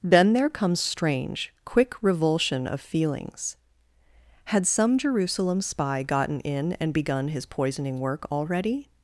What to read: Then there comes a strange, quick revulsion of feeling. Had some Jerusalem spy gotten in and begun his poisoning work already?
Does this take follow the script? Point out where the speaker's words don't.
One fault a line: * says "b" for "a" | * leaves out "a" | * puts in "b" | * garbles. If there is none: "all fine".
* leaves out "a"
* says "feelings" for "feeling"